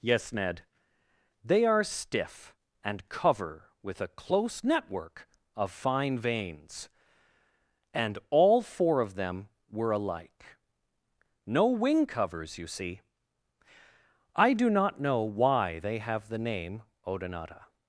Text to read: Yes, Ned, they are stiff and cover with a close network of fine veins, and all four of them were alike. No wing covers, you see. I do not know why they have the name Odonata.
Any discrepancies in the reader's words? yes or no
no